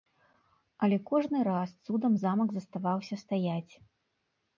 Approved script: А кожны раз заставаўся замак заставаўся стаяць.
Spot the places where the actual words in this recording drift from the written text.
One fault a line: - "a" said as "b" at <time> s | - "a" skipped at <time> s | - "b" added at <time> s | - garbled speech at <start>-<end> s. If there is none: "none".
- "А" said as "Але" at 0.8 s
- "заставаўся" said as "цудам" at 1.9 s